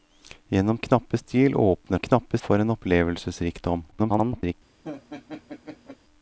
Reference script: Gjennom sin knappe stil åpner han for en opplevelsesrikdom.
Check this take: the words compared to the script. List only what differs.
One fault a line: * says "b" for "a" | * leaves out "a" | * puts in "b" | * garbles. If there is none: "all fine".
* leaves out "sin"
* says "knappe" for "han"
* garbles